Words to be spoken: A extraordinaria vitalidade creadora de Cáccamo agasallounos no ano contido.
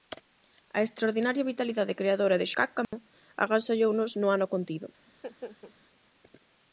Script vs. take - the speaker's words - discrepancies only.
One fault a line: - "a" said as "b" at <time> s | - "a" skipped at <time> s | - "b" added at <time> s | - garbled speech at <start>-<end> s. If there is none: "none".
none